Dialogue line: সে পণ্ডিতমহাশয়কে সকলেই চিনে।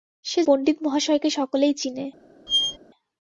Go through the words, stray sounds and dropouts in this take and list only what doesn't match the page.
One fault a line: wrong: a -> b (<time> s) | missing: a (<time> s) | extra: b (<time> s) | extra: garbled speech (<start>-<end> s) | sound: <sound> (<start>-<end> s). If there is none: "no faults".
sound: squeak (2.5-2.8 s)